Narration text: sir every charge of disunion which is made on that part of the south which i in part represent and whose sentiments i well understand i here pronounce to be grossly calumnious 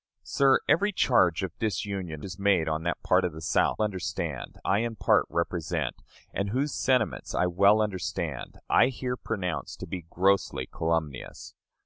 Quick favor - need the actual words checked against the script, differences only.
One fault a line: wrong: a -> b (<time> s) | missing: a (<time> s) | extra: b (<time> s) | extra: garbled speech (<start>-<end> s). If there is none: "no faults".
missing: which (2.2 s)
wrong: which -> understand (3.8 s)